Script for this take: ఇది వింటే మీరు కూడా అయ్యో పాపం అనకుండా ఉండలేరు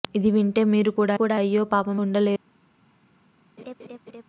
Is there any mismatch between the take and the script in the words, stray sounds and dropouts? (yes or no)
yes